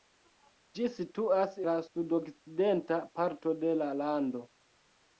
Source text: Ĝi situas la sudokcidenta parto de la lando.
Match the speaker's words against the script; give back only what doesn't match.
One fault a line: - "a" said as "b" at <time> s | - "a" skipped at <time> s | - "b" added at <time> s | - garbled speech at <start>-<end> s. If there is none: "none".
none